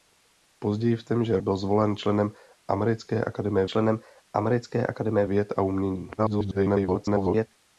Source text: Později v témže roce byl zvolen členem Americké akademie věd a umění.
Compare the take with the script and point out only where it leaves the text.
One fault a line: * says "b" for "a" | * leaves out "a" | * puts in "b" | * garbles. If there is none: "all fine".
* leaves out "roce"
* puts in "členem Americké akademie"
* garbles